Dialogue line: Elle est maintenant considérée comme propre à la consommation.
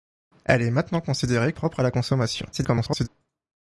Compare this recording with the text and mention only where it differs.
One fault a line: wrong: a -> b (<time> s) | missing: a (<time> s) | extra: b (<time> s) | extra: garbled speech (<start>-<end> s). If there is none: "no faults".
missing: comme (1.5 s)
extra: garbled speech (2.5-3.1 s)